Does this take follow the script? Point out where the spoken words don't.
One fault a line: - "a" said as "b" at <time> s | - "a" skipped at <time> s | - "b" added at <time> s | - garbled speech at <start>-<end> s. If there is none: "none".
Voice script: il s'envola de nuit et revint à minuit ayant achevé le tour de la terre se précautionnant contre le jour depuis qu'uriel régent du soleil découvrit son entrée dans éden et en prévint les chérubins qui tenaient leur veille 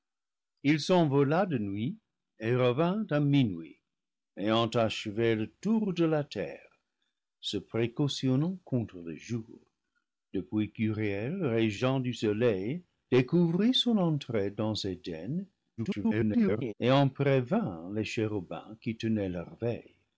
- garbled speech at 15.8-16.7 s